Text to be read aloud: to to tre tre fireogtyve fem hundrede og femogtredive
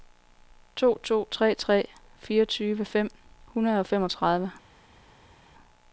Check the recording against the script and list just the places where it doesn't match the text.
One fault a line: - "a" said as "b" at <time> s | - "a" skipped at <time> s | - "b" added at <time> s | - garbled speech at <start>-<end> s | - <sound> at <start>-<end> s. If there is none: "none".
none